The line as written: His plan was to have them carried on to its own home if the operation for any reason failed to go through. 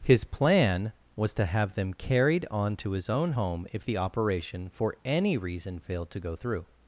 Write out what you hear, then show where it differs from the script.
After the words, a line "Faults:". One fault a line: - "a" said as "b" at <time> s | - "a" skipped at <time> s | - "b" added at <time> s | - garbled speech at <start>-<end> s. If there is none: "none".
His plan was to have them carried on to his own home if the operation for any reason failed to go through.
Faults:
- "its" said as "his" at 2.9 s